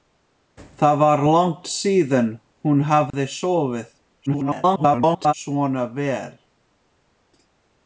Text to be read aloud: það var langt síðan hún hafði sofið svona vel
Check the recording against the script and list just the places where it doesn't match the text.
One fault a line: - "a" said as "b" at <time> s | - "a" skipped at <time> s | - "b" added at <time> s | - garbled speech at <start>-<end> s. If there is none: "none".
- garbled speech at 4.3-5.3 s